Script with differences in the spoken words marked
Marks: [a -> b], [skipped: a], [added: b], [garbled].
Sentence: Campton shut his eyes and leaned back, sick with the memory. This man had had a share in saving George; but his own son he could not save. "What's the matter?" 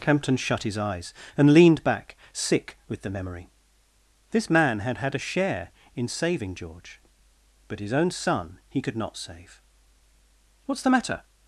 Campton shut his eyes and leaned back, sick with the memory. This man had had a share in saving George; but his own son he could not save. "What's the matter?"